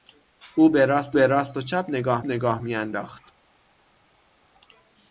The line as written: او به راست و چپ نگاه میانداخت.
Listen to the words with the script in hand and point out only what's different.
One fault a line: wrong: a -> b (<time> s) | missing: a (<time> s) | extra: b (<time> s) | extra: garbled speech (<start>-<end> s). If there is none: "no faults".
extra: به راست (1.1 s)
extra: نگاه (2.2 s)